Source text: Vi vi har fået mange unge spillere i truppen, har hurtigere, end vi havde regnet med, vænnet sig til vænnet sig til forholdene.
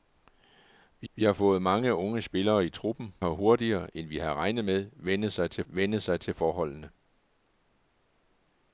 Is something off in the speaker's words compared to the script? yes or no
no